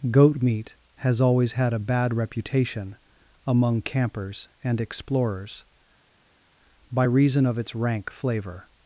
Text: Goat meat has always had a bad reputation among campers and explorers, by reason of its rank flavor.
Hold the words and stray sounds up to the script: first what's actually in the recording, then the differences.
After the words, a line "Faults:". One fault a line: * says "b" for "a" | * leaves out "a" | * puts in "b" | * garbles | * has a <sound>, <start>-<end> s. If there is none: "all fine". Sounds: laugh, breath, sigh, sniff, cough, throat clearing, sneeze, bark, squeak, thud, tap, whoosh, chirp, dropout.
Goat meat has always had a bad reputation among campers and explorers, by reason of its rank flavor.
Faults:
all fine